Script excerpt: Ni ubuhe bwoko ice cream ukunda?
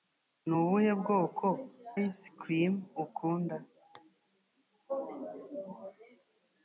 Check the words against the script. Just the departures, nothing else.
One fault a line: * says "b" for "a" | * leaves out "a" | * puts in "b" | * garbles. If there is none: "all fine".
all fine